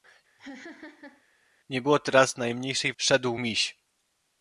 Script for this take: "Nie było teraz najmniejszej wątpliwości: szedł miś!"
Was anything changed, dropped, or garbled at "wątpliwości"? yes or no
yes